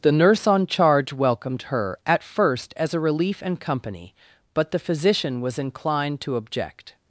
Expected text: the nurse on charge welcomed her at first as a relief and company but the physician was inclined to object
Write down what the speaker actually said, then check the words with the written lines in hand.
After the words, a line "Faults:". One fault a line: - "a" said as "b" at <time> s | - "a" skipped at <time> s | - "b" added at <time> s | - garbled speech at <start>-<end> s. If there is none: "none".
the nurse on charge welcomed her at first as a relief and company but the physician was inclined to object
Faults:
none